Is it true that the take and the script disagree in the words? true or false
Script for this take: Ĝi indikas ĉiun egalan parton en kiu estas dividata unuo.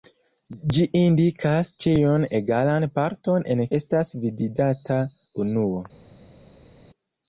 true